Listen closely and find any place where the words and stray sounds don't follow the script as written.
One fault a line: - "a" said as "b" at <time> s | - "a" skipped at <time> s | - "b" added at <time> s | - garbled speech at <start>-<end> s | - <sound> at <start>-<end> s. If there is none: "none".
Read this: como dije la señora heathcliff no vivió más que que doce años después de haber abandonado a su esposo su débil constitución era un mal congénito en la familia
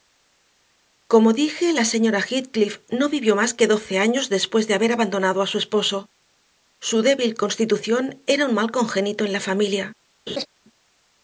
- "que" skipped at 3.7 s
- laugh at 10.3-10.5 s